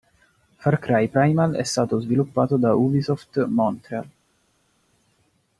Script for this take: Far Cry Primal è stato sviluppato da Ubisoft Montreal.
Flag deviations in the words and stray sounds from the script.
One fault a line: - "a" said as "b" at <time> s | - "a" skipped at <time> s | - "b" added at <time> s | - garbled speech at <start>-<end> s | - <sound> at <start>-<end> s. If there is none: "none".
none